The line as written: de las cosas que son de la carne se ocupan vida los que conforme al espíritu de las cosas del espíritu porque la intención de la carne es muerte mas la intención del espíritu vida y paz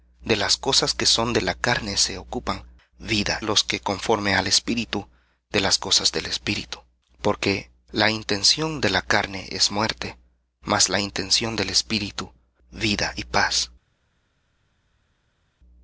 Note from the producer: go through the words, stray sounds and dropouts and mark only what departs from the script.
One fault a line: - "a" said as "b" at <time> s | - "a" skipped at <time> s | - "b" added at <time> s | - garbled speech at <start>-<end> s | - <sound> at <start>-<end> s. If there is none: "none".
none